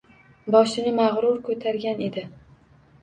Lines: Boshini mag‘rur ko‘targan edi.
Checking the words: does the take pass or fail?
pass